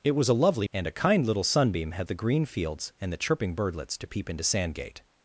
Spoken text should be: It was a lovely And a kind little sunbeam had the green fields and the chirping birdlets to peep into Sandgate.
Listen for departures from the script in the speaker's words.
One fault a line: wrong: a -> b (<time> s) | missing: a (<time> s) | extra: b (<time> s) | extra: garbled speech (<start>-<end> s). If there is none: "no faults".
no faults